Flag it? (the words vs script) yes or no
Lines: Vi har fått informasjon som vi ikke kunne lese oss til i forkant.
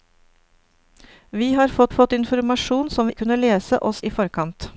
yes